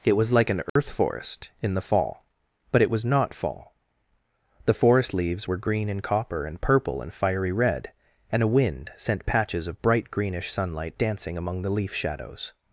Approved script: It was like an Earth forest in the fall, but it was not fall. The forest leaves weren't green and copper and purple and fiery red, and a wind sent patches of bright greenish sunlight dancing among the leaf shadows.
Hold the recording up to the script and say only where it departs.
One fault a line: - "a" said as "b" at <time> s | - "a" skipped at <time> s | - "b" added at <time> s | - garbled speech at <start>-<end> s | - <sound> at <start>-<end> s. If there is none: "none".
- dropout at 0.7-0.8 s
- "weren't" said as "were" at 5.4 s